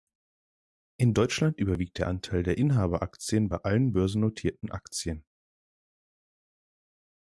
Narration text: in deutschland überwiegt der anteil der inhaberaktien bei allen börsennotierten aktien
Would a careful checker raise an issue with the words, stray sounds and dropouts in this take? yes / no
no